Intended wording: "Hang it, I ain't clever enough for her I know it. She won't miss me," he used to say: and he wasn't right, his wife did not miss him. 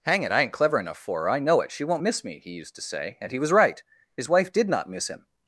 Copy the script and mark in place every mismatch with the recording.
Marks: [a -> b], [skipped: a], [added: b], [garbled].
"Hang it, I ain't clever enough for her I know it. She won't miss me," he used to say: and he [wasn't -> was] right, his wife did not miss him.